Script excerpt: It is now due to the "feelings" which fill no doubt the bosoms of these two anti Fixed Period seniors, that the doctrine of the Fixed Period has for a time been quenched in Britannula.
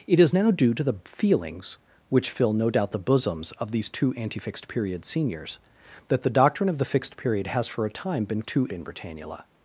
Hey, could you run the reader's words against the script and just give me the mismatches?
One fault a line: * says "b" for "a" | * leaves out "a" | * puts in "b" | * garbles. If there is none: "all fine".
* says "two" for "quenched"